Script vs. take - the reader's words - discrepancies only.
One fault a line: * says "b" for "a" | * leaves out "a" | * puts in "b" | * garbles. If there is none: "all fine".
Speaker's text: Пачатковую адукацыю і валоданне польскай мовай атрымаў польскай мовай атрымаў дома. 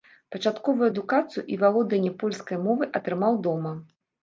* leaves out "польскай мовай атрымаў"